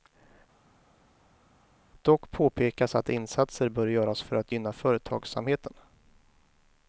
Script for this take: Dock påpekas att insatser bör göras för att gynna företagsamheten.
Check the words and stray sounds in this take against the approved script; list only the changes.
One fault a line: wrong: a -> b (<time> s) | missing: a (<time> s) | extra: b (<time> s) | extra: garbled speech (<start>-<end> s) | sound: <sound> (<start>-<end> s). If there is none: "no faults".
no faults